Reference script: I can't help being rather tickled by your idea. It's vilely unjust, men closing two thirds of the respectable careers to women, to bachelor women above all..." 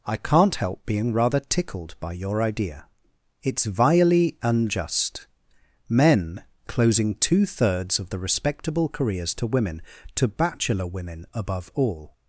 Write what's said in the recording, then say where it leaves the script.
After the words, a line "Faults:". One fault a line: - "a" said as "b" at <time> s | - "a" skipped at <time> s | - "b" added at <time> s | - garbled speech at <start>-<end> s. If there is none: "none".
I can't help being rather tickled by your idea. It's vilely unjust, men closing two thirds of the respectable careers to women, to bachelor women above all..."
Faults:
none